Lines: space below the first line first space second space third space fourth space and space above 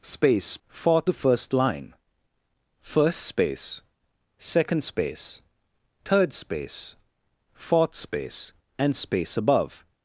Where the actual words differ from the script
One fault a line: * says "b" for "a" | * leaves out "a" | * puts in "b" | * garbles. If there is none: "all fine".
* says "fourth" for "below"